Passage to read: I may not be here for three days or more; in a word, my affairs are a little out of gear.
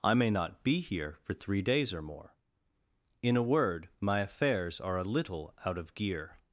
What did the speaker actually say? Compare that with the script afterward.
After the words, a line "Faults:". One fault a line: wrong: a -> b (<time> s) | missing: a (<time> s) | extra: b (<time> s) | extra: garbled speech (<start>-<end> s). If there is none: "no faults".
I may not be here for three days or more; in a word, my affairs are a little out of gear.
Faults:
no faults